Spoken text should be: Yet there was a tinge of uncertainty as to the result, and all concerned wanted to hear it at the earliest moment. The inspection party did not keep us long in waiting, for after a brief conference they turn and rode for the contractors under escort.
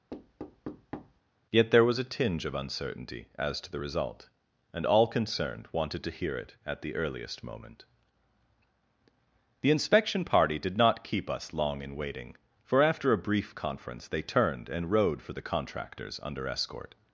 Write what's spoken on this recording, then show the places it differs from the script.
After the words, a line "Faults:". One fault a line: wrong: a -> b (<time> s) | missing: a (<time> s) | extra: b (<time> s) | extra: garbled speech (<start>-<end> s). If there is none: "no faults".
Yet there was a tinge of uncertainty as to the result, and all concerned wanted to hear it at the earliest moment. The inspection party did not keep us long in waiting, for after a brief conference they turned and rode for the contractors under escort.
Faults:
wrong: turn -> turned (14.2 s)